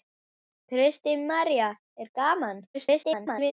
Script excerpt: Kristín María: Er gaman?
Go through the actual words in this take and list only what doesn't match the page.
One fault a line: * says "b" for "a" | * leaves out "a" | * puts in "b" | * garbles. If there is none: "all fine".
* garbles